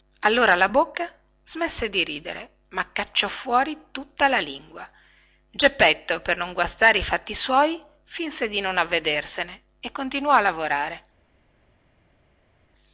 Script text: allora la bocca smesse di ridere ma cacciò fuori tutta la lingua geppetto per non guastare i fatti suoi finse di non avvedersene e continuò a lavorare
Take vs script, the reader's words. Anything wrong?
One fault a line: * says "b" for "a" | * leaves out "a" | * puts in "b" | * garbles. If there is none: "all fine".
all fine